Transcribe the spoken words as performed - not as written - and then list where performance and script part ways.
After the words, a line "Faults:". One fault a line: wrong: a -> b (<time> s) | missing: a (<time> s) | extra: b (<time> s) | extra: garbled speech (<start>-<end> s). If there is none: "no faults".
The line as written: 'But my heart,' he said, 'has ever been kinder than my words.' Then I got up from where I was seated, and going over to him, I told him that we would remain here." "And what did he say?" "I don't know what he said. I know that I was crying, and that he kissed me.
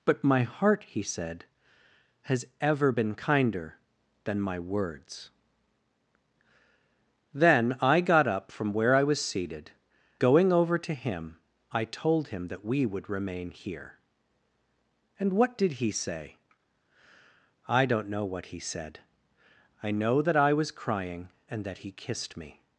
'But my heart,' he said, 'has ever been kinder than my words.' Then I got up from where I was seated, going over to him, I told him that we would remain here." "And what did he say?" "I don't know what he said. I know that I was crying, and that he kissed me.
Faults:
missing: and (9.7 s)